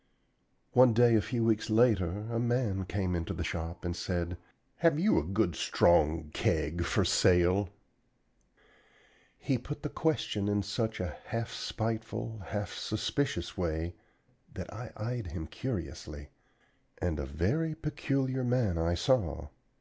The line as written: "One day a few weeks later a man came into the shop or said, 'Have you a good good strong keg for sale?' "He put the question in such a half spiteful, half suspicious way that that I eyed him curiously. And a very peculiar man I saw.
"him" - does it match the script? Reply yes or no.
yes